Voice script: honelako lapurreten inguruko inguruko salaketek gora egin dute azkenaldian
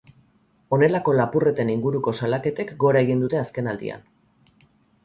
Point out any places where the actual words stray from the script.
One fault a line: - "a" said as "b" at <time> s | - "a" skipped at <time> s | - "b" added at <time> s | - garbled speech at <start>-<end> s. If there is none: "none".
- "inguruko" skipped at 2.1 s